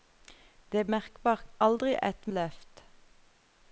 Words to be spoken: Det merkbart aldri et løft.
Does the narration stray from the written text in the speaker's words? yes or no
no